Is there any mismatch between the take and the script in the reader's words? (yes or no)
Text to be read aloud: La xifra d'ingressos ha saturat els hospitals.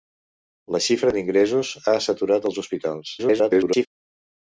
yes